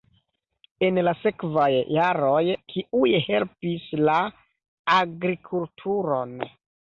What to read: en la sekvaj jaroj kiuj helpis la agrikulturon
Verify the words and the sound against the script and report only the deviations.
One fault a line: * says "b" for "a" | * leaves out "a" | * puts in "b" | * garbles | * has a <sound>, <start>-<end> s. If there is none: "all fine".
all fine